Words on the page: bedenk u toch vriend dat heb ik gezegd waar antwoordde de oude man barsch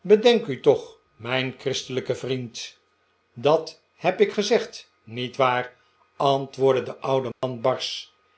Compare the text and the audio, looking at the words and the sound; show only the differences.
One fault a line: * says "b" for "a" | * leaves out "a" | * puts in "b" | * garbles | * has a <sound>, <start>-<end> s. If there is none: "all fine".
* puts in "mijn christelijke"
* puts in "niet"
* has a dropout, 7.3-7.4 s